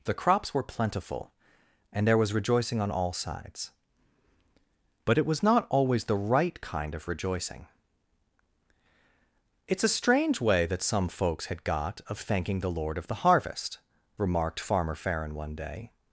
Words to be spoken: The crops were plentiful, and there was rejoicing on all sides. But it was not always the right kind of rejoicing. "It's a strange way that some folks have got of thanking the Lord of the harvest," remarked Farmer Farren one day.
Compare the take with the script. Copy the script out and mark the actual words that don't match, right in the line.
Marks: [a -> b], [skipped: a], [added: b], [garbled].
The crops were plentiful, and there was rejoicing on all sides. But it was not always the right kind of rejoicing. "It's a strange way that some folks [have -> had] got of thanking the Lord of the harvest," remarked Farmer Farren one day.